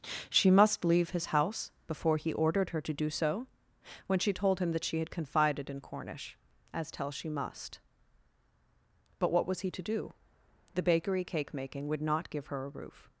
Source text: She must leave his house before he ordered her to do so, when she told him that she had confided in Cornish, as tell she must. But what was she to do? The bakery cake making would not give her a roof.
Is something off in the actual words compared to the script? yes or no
yes